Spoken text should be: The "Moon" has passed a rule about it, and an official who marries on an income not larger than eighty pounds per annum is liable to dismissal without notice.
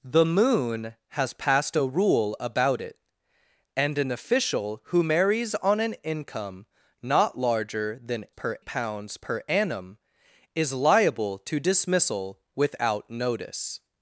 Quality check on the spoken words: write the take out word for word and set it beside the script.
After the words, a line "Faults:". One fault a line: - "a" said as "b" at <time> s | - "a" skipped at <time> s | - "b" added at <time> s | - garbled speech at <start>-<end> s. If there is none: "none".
The "Moon" has passed a rule about it, and an official who marries on an income not larger than per pounds per annum is liable to dismissal without notice.
Faults:
- "eighty" said as "per" at 8.3 s